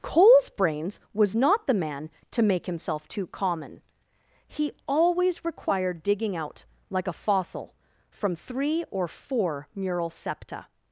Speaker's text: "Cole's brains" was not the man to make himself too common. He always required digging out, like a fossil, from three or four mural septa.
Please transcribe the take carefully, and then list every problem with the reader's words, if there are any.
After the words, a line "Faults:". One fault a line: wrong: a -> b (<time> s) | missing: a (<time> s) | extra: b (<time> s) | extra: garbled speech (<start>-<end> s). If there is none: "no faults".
"Cole's brains" was not the man to make himself too common. He always required digging out, like a fossil, from three or four mural septa.
Faults:
no faults